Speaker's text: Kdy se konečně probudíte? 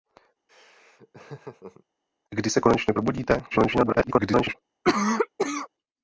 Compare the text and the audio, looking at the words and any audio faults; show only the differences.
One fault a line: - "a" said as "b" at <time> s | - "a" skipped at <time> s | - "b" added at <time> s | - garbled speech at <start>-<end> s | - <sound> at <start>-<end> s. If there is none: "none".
- laugh at 0.5-1.8 s
- garbled speech at 3.5-4.5 s
- cough at 4.8-5.7 s